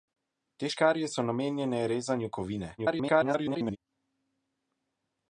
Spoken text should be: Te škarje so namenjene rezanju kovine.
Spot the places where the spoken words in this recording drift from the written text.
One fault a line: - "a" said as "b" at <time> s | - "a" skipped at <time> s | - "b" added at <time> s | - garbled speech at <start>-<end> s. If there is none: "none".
- garbled speech at 2.8-3.8 s